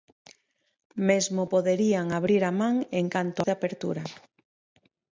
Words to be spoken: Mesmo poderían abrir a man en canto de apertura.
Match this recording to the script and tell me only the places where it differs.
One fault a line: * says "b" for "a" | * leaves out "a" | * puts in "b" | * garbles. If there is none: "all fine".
all fine